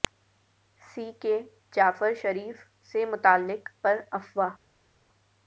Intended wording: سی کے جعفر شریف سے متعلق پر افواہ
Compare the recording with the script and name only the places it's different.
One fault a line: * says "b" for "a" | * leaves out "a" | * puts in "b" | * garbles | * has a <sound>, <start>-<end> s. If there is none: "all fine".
all fine